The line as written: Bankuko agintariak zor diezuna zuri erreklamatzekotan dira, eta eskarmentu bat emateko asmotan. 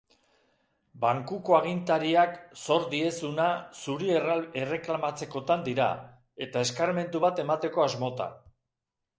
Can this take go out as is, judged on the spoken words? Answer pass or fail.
pass